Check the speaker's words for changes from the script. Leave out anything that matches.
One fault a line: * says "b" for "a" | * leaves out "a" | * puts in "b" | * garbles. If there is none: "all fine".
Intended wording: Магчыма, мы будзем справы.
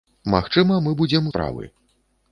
all fine